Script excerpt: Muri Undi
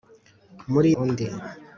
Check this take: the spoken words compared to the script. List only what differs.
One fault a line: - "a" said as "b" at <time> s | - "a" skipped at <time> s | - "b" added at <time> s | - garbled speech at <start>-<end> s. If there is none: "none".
none